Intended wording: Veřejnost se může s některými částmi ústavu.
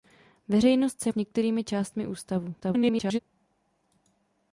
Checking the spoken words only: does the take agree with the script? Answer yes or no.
no